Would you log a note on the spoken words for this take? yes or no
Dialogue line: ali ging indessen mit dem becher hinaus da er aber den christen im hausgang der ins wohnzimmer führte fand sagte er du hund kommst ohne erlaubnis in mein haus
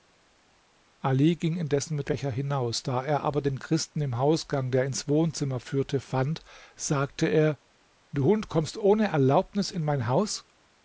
yes